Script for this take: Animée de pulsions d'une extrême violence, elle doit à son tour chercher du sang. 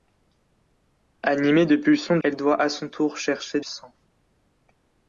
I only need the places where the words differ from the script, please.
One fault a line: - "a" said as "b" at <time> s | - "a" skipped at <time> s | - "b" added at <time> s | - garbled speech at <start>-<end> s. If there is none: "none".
- "d'une extrême violence" skipped at 2.2 s
- "du" skipped at 3.6 s